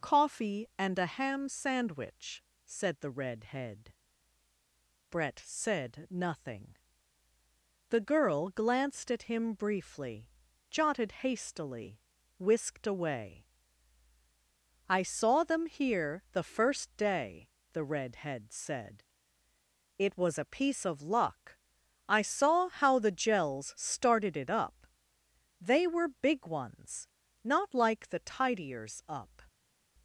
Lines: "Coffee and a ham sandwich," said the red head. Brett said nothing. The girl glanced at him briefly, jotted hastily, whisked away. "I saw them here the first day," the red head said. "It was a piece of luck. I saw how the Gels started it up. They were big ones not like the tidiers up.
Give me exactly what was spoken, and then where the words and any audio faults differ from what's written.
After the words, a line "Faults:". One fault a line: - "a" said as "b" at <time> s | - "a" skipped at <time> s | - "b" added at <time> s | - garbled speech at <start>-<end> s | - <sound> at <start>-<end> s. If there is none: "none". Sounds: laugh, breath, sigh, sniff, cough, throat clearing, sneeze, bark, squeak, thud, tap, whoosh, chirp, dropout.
"Coffee and a ham sandwich," said the red head. Brett said nothing. The girl glanced at him briefly, jotted hastily, whisked away. "I saw them here the first day," the red head said. "It was a piece of luck. I saw how the Gels started it up. They were big ones not like the tidiers up.
Faults:
none